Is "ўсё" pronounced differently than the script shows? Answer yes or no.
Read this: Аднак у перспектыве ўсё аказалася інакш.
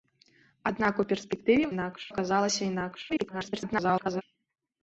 yes